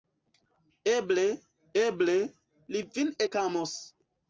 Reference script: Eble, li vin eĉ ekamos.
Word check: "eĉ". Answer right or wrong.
wrong